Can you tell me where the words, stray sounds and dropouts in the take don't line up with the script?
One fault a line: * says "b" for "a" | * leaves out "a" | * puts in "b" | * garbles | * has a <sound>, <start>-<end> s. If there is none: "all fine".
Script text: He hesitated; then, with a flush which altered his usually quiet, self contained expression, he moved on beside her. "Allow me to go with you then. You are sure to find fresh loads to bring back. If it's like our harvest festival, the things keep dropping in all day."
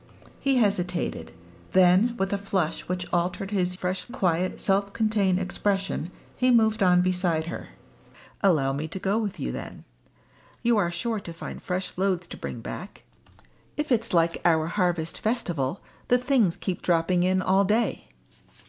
* says "fresh" for "usually"